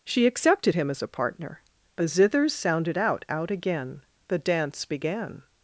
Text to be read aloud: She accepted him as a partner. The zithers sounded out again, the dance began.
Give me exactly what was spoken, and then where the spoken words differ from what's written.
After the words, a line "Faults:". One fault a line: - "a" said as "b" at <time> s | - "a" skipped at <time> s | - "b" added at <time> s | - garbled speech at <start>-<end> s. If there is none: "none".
She accepted him as a partner. The zithers sounded out out again, the dance began.
Faults:
- "out" added at 3.3 s